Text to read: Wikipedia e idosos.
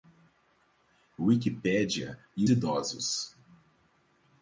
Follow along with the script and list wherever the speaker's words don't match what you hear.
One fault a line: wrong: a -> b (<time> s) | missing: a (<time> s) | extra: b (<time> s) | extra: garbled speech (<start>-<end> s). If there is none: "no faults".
no faults